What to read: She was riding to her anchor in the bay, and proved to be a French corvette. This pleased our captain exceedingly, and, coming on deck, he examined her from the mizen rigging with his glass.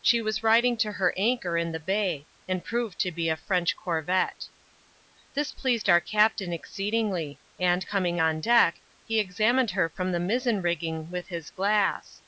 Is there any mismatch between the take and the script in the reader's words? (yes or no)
no